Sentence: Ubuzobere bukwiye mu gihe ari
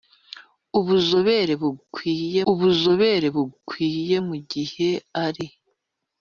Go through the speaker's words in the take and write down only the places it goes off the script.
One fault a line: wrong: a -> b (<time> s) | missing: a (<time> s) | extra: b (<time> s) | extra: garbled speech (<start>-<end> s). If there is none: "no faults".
extra: ubuzobere bukwiye (2.5 s)